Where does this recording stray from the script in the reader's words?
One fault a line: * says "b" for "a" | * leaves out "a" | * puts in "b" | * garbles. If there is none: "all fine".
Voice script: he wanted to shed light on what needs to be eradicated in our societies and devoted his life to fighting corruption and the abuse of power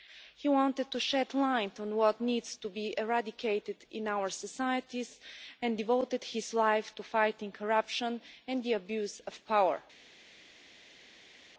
all fine